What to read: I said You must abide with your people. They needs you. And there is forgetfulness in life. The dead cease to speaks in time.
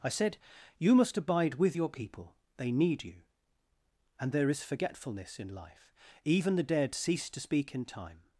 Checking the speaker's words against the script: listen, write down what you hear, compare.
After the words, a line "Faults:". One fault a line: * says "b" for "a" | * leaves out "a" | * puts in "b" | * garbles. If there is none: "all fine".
I said You must abide with your people. They need you. And there is forgetfulness in life. Even the dead cease to speak in time.
Faults:
* says "need" for "needs"
* puts in "Even"
* says "speak" for "speaks"